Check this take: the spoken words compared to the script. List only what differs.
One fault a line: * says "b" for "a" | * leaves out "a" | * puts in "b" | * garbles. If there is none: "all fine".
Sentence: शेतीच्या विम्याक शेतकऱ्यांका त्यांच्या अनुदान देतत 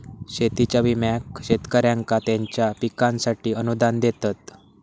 * puts in "पिकांसाठी"